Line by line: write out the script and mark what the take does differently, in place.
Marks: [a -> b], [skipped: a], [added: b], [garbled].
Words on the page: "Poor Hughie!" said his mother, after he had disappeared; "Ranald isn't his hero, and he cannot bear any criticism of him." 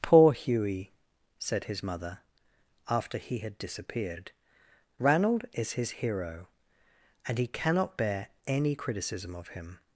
"Poor Hughie!" said his mother, after he had disappeared; "Ranald [isn't -> is] his hero, and he cannot bear any criticism of him."